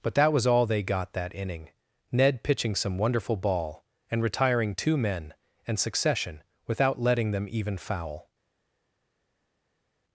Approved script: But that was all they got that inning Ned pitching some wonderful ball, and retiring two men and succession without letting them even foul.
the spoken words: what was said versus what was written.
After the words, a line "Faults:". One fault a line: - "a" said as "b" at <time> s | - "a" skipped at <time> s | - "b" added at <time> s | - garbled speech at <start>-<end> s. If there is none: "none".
But that was all they got that inning Ned pitching some wonderful ball, and retiring two men and succession without letting them even foul.
Faults:
none